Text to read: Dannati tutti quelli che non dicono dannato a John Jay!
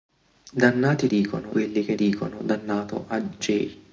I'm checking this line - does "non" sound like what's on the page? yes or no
no